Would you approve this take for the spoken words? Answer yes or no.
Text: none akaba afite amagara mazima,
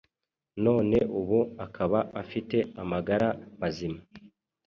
no